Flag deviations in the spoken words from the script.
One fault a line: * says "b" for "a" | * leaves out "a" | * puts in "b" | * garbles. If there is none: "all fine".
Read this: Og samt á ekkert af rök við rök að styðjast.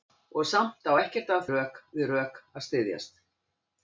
all fine